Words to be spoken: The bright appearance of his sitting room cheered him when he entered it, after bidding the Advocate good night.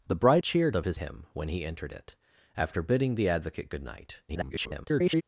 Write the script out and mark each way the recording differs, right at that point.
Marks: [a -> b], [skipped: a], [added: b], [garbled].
The bright [appearance -> cheered] of his [skipped: sitting room cheered] him when he entered it, after bidding the Advocate good night. [garbled]